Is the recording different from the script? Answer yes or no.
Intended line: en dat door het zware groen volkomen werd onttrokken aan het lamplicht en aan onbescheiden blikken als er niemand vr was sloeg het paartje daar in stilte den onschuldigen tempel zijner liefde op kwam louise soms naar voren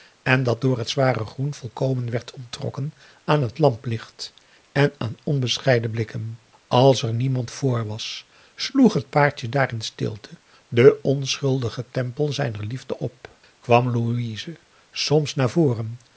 no